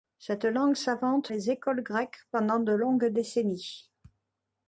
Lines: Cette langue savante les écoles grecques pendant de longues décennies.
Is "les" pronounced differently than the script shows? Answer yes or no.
no